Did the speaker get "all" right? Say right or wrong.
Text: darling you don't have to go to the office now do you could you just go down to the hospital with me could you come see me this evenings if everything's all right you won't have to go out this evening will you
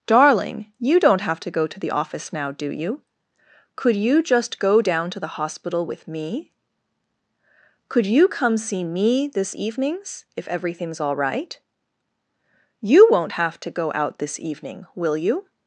right